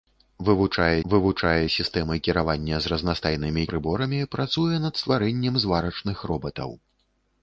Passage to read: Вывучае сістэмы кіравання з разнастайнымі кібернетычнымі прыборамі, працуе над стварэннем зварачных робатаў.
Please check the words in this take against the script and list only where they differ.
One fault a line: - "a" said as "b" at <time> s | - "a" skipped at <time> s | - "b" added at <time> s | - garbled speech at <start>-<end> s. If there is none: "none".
- "вывучае" added at 1.1 s
- "кібернетычнымі" skipped at 3.7 s